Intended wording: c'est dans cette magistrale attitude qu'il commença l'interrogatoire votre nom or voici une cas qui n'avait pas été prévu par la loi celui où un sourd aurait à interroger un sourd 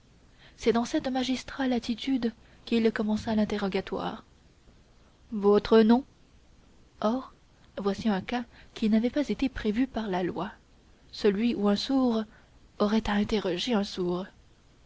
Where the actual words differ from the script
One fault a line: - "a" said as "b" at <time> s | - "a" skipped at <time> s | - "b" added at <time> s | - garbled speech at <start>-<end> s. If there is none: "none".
- "une" said as "un" at 8.1 s